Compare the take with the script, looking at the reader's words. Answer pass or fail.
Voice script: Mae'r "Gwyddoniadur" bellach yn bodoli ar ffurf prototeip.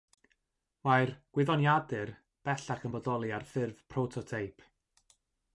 pass